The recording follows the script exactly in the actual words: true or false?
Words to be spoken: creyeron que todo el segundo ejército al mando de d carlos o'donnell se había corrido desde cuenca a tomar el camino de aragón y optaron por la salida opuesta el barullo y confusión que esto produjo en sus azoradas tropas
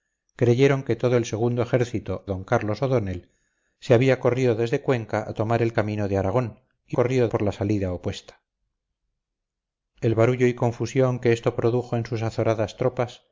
false